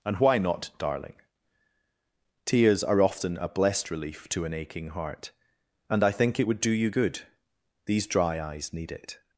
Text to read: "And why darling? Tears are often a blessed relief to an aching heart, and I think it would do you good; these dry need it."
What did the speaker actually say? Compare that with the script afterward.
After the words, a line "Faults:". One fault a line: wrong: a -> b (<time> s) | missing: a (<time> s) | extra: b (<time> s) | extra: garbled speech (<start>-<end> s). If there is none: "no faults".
"And why not, darling? Tears are often a blessed relief to an aching heart, and I think it would do you good; these dry eyes need it."
Faults:
extra: not (0.4 s)
extra: eyes (8.4 s)